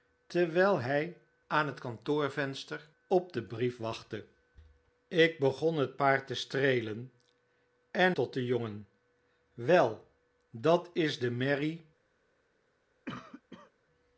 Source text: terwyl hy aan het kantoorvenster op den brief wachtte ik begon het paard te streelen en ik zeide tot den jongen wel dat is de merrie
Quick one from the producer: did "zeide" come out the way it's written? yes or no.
no